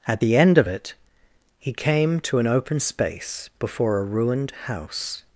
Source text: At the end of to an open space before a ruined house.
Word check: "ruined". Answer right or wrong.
right